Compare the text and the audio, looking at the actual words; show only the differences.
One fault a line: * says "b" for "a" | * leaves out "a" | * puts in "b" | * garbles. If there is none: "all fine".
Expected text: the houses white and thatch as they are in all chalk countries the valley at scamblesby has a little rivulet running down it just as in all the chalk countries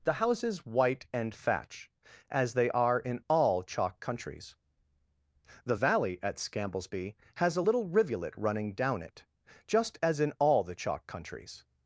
all fine